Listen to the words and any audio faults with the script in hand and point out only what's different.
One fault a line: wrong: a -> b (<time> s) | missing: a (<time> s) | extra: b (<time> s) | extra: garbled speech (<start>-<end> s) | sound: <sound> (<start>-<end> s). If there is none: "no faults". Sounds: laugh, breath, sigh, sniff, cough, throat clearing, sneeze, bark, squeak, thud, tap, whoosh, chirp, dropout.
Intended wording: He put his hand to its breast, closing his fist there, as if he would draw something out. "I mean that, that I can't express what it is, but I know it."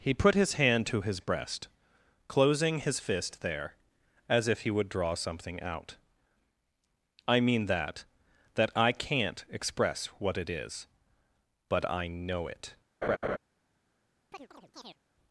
wrong: its -> his (1.0 s)
sound: laugh (13.0-13.4 s)
sound: chirp (14.3-15.0 s)